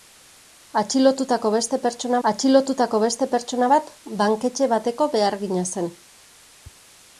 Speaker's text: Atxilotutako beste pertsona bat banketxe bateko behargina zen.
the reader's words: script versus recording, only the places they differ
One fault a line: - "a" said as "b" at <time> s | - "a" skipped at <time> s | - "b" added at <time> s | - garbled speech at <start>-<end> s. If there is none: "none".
- "atxilotutako beste pertsona" added at 2.3 s